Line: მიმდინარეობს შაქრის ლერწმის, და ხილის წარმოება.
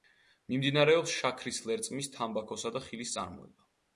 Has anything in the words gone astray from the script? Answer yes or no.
yes